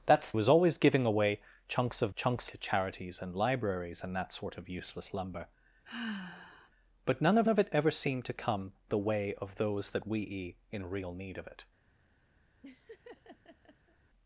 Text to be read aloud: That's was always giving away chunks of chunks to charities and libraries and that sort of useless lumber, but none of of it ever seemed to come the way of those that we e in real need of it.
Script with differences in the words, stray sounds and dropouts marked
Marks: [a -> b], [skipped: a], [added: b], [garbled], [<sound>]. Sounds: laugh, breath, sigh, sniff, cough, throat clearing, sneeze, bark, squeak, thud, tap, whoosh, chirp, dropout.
That's was always giving away chunks of chunks to charities and libraries and that sort of useless lumber, [sigh] but none of of it ever seemed to come the way of those that we e in real need of it. [laugh]